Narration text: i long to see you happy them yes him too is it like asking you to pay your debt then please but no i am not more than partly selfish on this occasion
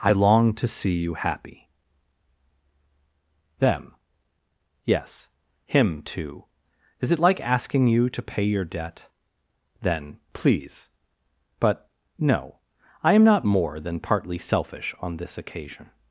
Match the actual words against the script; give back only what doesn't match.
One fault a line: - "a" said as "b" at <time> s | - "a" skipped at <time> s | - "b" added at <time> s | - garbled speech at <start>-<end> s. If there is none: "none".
none